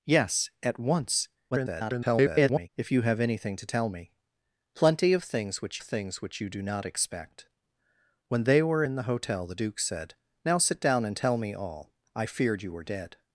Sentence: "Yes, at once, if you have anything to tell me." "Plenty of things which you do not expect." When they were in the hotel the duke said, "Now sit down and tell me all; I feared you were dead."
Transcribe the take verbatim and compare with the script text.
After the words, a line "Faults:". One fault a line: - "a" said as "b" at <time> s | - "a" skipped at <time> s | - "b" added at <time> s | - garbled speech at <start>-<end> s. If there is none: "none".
"Yes, at once, [garbled] if you have anything to tell me." "Plenty of things which things which you do not expect." When they were in the hotel the duke said, "Now sit down and tell me all; I feared you were dead."
Faults:
- garbled speech at 1.5-2.7 s
- "things which" added at 5.8 s